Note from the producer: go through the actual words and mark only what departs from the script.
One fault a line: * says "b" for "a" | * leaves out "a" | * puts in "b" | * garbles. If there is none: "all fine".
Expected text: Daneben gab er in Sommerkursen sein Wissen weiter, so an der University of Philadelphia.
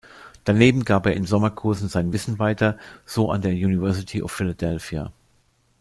all fine